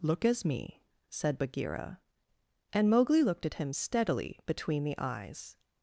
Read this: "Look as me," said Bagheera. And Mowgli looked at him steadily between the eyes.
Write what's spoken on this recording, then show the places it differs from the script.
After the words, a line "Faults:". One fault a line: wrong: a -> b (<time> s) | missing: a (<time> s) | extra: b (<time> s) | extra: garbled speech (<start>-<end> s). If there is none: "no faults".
"Look as me," said Bagheera. And Mowgli looked at him steadily between the eyes.
Faults:
no faults